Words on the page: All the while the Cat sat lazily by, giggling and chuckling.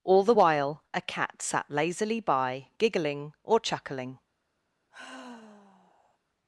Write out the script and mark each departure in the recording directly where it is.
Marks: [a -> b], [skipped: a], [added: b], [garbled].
All the while [the -> a] Cat sat lazily by, giggling [and -> or] chuckling.